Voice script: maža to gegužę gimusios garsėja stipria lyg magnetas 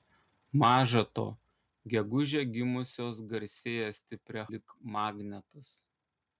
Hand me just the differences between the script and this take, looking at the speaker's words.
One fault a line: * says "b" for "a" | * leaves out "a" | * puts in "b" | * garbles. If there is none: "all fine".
all fine